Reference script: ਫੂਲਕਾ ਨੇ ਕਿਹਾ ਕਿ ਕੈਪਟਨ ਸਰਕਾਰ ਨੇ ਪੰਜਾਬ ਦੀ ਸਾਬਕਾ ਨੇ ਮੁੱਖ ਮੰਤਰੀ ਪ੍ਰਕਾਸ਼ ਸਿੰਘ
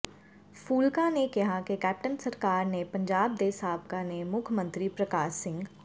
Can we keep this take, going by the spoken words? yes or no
no